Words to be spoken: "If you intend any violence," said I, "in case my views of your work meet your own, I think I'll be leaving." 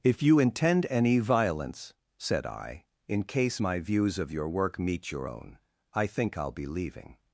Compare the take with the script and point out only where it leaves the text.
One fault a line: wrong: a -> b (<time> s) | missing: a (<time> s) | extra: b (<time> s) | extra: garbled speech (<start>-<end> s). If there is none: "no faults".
no faults